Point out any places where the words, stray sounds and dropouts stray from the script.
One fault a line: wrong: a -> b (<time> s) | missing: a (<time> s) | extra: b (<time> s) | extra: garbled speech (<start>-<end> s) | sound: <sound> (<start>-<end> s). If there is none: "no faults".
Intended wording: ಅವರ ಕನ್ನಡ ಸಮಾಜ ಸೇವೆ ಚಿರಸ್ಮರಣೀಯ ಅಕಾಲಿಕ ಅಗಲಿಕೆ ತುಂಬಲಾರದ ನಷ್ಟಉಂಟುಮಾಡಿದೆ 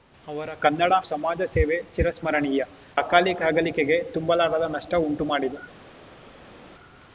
no faults